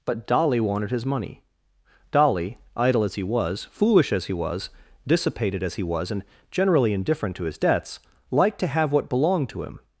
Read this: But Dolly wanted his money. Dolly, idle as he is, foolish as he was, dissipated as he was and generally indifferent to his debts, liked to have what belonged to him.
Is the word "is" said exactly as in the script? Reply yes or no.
no